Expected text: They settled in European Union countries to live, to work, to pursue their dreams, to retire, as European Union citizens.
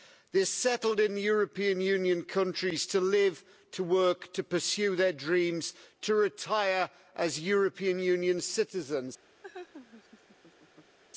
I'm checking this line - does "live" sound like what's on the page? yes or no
yes